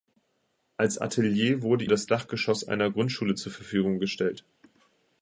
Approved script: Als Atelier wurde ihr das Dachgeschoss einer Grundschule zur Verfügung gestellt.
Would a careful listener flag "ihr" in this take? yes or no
yes